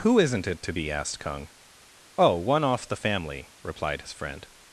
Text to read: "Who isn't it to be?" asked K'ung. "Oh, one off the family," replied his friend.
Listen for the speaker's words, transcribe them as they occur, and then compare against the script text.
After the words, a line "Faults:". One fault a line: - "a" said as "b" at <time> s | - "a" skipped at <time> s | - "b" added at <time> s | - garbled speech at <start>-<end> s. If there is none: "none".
"Who isn't it to be?" asked K'ung. "Oh, one off the family," replied his friend.
Faults:
none